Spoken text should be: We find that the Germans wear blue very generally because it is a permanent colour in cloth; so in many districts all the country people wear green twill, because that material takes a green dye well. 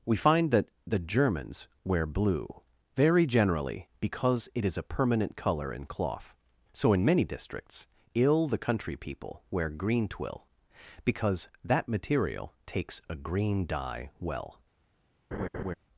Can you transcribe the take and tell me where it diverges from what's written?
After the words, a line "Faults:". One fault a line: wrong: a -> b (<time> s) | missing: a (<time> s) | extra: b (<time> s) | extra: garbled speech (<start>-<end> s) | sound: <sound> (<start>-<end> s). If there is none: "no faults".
We find that the Germans wear blue very generally because it is a permanent colour in cloth; so in many districts ill the country people wear green twill, because that material takes a green dye well.
Faults:
wrong: all -> ill (8.1 s)
sound: laugh (15.3-15.7 s)